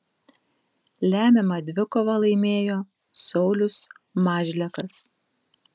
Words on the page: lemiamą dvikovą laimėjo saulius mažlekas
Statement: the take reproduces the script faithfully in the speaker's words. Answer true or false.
true